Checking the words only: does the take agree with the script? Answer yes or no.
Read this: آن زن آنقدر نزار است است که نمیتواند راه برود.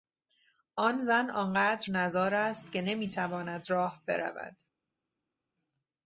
no